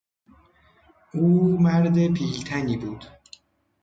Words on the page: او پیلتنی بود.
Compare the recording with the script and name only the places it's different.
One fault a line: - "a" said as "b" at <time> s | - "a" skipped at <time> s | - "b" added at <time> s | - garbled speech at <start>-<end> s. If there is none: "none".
- "مرد" added at 1.6 s